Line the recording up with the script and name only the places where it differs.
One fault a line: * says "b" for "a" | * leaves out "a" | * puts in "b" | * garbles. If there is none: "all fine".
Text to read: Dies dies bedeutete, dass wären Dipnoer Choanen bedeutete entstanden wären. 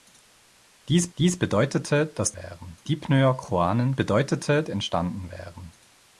all fine